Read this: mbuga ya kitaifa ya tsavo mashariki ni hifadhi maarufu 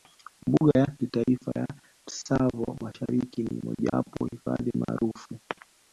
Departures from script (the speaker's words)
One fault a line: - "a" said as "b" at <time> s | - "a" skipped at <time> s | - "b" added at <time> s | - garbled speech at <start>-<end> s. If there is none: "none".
- "mojawapo" added at 3.6 s